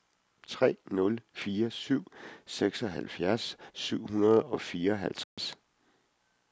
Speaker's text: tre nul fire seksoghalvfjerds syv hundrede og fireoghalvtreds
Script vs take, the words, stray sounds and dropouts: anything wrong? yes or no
yes